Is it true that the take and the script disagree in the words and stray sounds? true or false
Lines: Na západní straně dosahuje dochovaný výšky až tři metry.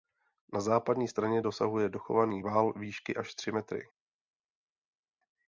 true